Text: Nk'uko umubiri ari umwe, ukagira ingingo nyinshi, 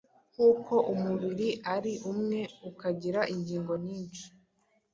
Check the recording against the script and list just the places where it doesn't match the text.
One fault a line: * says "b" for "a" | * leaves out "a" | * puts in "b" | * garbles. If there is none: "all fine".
all fine